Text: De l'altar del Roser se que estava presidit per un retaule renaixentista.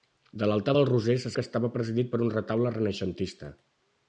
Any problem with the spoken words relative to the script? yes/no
no